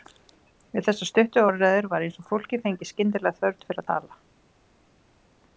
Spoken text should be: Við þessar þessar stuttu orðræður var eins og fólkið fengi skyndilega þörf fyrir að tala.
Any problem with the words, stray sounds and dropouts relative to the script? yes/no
yes